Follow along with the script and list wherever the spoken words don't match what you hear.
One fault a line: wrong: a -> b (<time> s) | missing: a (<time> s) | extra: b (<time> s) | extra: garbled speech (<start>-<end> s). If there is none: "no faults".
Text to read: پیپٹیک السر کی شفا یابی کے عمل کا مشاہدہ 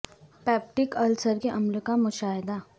missing: کی شفا یابی (1.4 s)